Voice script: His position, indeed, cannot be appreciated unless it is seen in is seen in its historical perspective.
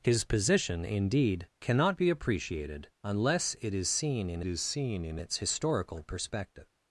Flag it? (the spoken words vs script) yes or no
no